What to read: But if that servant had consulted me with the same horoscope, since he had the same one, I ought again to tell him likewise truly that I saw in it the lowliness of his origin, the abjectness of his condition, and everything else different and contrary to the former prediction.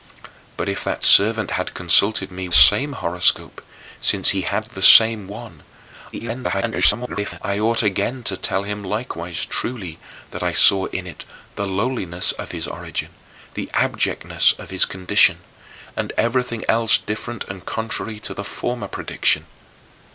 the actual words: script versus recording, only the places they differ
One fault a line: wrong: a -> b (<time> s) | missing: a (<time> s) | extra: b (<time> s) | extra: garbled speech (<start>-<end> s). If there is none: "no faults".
missing: with the (2.5 s)
extra: garbled speech (6.1-7.4 s)